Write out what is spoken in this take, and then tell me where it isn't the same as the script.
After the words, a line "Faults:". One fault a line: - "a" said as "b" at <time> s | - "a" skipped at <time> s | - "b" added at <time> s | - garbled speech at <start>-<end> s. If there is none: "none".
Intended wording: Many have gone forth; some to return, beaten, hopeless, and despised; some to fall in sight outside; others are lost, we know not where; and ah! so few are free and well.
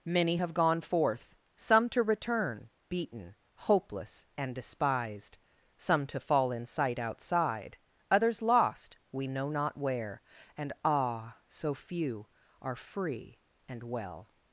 Many have gone forth; some to return, beaten, hopeless, and despised; some to fall in sight outside; others lost, we know not where; and ah! so few are free and well.
Faults:
- "are" skipped at 8.4 s